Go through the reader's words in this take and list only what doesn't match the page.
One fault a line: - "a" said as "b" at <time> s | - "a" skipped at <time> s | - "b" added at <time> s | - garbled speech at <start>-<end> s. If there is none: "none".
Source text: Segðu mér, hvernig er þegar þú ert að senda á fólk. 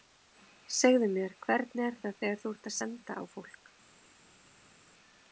- "það" added at 2.0 s